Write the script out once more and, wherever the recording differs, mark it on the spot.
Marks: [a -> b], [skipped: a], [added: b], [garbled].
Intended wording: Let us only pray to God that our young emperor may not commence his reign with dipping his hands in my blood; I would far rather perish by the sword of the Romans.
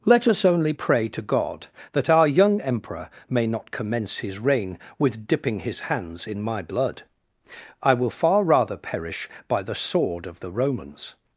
Let us only pray to God that our young emperor may not commence his reign with dipping his hands in my blood; I [would -> will] far rather perish by the sword of the Romans.